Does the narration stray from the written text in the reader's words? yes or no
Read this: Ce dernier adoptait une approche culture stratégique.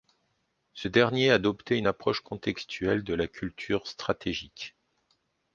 yes